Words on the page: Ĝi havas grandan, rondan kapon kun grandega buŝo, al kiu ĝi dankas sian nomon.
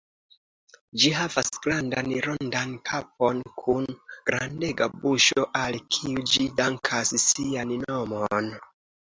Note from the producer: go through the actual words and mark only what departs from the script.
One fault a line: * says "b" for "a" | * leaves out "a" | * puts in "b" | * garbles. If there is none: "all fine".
all fine